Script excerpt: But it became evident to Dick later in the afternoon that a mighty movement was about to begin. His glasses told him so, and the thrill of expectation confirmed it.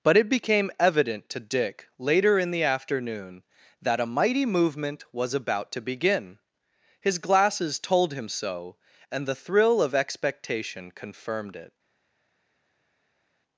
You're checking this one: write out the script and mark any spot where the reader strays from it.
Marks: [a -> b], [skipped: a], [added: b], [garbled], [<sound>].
But it became evident to Dick later in the afternoon that a mighty movement was about to begin. His glasses told him so, and the thrill of expectation confirmed it.